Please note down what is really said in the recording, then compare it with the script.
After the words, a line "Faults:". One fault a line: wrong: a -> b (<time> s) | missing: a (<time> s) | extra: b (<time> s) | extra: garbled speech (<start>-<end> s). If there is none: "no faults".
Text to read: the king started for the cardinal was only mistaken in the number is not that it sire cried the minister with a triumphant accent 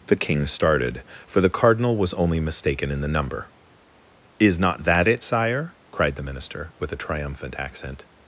the king started for the cardinal was only mistaken in the number is not that it sire cried the minister with a triumphant accent
Faults:
no faults